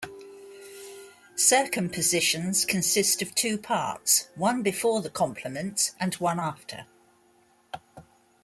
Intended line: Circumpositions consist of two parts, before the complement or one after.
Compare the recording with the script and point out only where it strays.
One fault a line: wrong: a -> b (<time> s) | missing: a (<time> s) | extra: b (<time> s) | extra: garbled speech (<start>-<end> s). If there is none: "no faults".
extra: one (4.4 s)
wrong: or -> and (6.0 s)